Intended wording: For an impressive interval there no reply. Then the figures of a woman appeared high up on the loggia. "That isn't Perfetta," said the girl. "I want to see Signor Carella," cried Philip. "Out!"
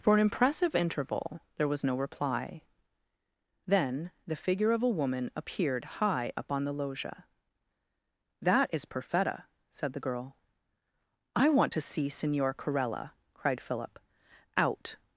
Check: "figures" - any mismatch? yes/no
yes